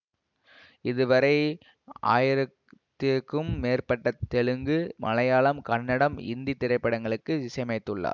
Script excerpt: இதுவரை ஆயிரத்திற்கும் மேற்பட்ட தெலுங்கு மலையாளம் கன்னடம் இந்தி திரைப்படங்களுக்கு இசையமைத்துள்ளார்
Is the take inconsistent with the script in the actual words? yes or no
no